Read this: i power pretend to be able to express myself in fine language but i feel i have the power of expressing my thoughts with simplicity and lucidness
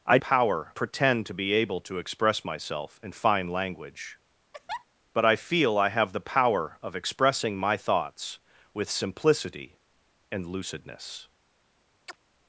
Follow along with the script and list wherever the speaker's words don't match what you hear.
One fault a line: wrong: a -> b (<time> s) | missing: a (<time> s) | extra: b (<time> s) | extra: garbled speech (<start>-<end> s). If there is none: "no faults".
no faults